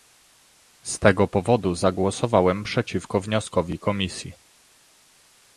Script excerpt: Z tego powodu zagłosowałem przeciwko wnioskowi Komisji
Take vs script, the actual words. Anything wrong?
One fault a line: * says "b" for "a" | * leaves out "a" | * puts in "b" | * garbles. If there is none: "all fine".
all fine